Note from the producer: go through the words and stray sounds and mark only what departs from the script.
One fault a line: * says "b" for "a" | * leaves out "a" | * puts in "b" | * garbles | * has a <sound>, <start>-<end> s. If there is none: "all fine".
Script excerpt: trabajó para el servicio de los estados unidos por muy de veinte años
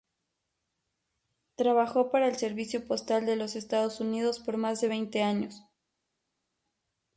* puts in "postal"
* says "más" for "muy"